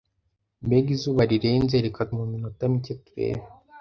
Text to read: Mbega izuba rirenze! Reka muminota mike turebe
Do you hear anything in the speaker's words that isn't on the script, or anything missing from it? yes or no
no